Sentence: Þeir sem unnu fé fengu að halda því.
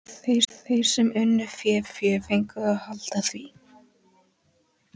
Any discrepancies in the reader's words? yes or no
yes